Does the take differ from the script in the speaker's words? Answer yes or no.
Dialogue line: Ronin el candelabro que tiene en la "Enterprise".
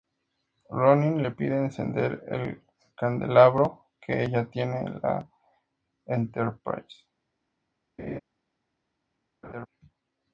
yes